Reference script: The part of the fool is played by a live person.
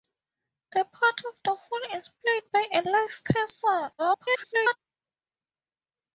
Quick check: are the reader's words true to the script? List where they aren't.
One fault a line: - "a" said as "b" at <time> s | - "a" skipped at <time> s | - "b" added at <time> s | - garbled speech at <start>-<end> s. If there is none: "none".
- garbled speech at 4.0-4.8 s